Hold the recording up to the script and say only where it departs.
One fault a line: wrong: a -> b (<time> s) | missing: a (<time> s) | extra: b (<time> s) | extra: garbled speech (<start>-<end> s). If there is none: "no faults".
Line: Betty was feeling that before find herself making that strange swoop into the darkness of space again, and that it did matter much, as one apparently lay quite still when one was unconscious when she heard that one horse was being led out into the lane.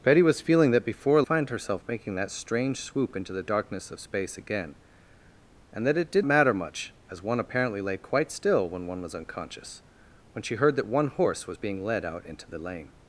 no faults